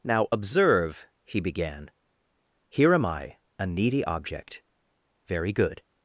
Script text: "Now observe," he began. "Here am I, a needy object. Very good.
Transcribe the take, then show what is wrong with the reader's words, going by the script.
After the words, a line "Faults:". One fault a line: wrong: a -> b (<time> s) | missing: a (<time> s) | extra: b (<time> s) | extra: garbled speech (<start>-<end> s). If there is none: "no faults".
"Now observe," he began. "Here am I, a needy object. Very good.
Faults:
no faults